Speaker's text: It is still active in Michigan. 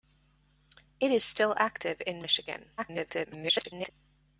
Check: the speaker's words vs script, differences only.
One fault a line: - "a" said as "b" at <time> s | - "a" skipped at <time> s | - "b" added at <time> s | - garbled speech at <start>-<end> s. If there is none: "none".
- garbled speech at 2.8-3.9 s